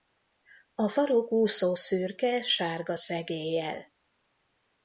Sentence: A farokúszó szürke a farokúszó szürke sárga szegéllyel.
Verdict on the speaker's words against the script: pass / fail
fail